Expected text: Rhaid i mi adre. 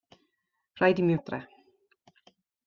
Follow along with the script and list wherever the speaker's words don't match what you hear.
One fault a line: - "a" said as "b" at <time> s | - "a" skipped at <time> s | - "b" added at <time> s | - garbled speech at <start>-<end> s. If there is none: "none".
none